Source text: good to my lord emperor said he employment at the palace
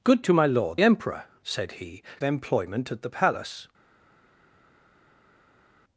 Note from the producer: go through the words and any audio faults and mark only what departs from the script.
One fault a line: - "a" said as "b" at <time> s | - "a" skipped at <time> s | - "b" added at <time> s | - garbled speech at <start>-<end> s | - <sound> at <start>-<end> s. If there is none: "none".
none